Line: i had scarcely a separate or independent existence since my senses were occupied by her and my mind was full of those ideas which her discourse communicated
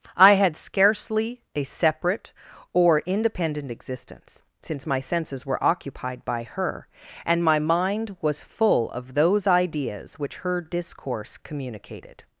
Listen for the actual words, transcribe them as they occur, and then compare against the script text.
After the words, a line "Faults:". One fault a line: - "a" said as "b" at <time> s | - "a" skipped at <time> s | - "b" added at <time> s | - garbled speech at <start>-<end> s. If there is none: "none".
i had scarcely a separate or independent existence since my senses were occupied by her and my mind was full of those ideas which her discourse communicated
Faults:
none